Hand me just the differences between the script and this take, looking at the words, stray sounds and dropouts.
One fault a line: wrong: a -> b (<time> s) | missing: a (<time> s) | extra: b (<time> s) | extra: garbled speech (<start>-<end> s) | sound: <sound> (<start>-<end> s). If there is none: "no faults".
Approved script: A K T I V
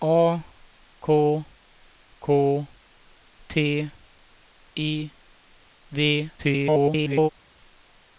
extra: K (2.2 s)
extra: garbled speech (6.4-7.3 s)